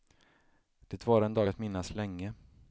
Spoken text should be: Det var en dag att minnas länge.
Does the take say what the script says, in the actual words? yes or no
yes